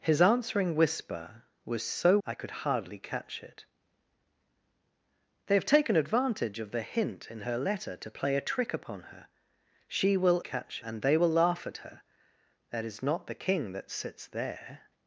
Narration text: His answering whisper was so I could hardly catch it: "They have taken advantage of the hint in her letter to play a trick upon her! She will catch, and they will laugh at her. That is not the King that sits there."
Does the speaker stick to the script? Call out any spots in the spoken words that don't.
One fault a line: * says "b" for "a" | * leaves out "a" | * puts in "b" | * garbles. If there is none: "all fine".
all fine